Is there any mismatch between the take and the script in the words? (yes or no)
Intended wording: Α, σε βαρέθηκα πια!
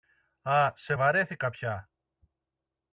no